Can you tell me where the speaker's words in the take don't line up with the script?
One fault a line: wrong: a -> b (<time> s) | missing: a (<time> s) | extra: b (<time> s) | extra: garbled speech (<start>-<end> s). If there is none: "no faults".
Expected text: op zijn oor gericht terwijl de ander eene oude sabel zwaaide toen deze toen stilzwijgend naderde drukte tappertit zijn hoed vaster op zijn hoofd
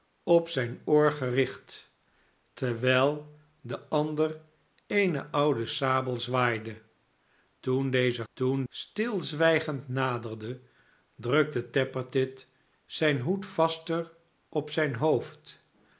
no faults